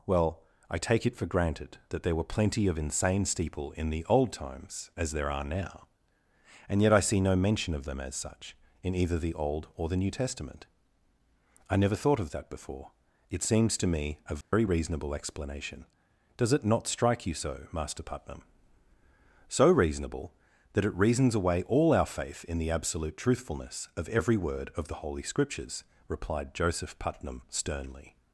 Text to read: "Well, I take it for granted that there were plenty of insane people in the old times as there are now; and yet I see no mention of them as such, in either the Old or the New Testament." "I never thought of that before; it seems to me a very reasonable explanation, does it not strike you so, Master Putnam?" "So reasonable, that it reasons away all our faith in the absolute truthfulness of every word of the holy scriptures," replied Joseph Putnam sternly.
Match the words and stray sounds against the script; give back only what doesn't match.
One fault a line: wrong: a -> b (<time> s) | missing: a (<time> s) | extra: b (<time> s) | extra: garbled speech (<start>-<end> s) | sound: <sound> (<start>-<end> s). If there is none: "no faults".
wrong: people -> steeple (3.2 s)
sound: dropout (14.4-14.5 s)